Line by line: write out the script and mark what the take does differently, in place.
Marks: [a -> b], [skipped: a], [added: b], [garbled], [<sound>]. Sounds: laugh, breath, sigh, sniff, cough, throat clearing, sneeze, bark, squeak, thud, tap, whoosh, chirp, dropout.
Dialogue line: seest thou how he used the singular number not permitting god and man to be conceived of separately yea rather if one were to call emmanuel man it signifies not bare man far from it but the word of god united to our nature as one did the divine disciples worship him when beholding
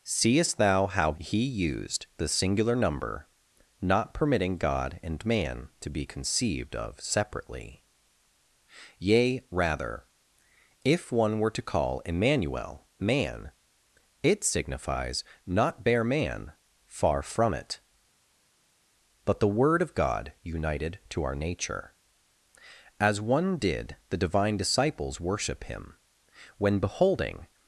seest thou how he used the singular number not permitting god and man to be conceived of separately yea rather if one were to call emmanuel man it signifies not bare man far from it but the word of god united to our nature as one did the divine disciples worship him when beholding